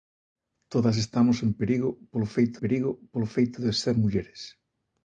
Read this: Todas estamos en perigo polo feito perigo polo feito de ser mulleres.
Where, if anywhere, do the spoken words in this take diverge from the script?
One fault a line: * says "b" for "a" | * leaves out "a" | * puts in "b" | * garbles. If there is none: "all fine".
all fine